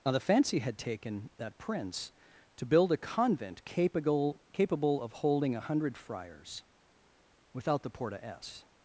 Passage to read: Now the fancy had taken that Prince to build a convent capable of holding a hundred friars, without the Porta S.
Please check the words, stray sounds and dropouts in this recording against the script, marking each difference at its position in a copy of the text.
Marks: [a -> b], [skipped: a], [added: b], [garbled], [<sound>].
Now the fancy had taken that Prince to build a convent capable [added: capable] of holding a hundred friars, without the Porta S.